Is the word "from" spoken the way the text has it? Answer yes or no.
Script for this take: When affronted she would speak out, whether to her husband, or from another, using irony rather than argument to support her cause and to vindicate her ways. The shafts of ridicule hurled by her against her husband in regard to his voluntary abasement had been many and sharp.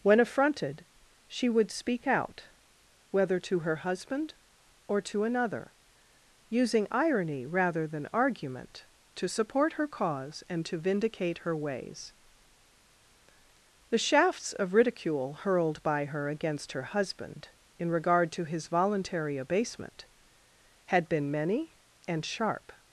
no